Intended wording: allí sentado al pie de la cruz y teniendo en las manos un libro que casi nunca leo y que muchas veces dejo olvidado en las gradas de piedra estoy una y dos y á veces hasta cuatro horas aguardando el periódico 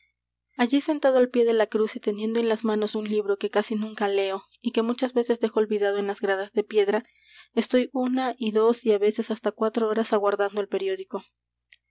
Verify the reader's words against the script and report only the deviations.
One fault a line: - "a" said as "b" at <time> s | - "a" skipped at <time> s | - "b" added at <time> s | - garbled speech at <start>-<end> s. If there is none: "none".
none